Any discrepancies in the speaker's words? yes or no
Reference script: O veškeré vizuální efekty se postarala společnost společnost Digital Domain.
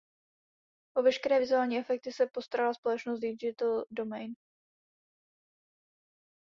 yes